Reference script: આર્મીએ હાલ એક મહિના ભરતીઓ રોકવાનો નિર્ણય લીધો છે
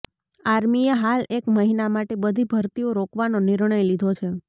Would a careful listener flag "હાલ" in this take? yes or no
no